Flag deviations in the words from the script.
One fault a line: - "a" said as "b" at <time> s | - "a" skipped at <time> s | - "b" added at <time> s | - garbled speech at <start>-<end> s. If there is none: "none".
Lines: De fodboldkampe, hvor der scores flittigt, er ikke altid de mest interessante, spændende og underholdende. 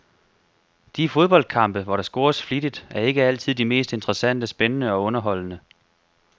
none